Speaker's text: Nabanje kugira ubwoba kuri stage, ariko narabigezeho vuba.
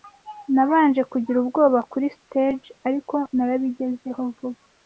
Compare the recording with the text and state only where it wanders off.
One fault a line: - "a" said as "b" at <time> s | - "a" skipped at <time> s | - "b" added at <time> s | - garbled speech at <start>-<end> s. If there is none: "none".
none